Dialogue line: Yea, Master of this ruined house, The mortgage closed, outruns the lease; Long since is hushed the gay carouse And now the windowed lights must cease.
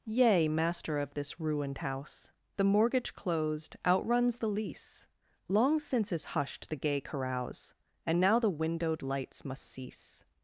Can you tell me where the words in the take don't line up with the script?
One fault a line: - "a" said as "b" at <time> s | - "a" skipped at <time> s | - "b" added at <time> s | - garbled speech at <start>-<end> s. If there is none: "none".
none